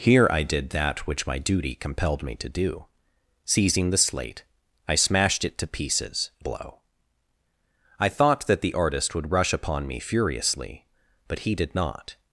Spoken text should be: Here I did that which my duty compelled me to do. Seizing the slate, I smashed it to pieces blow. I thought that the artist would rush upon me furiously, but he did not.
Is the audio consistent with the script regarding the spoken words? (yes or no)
yes